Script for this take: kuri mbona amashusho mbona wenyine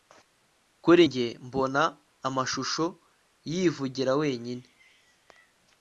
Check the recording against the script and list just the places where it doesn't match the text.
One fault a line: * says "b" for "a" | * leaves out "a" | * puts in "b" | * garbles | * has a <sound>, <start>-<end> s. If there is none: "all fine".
* puts in "njye"
* says "yivugira" for "mbona"